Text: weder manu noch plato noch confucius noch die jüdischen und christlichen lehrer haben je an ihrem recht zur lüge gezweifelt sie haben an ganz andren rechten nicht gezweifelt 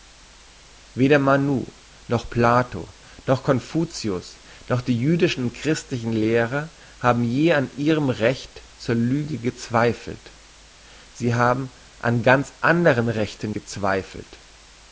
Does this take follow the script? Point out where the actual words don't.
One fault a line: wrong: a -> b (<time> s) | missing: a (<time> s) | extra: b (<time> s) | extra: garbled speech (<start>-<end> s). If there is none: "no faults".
missing: nicht (13.5 s)